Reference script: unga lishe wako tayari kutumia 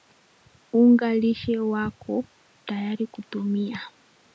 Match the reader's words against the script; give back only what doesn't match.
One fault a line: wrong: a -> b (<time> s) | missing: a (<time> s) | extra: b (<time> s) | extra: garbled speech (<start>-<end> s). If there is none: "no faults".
no faults